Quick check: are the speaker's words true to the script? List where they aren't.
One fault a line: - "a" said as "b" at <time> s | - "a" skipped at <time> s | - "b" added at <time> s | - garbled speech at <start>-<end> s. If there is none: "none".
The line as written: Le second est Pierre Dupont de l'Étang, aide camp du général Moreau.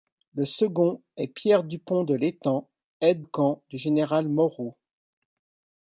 none